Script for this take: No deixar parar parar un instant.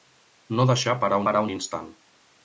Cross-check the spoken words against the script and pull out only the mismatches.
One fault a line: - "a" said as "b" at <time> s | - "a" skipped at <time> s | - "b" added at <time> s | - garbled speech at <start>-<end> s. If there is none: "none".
none